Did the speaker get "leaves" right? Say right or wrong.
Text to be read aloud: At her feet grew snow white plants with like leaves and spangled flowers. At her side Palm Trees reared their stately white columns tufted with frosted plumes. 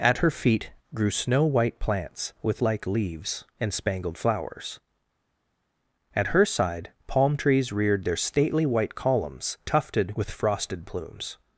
right